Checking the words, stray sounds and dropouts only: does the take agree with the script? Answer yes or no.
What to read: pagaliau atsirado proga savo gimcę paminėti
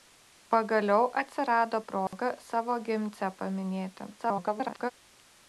no